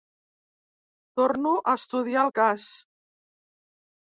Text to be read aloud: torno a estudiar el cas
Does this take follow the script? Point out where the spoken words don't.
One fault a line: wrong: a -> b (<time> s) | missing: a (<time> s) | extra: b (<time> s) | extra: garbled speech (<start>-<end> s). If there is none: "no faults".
no faults